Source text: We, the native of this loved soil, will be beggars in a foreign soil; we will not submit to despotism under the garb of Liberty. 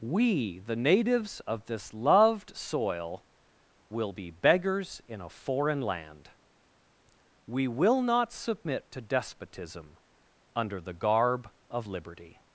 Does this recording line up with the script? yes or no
no